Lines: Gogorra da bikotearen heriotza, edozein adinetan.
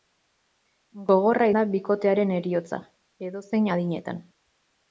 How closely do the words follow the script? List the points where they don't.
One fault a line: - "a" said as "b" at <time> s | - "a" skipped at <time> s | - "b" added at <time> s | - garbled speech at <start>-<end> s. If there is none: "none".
none